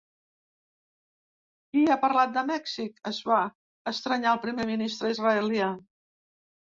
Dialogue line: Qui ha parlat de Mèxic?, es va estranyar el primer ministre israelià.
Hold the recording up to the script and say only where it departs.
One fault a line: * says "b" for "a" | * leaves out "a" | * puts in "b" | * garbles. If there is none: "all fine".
all fine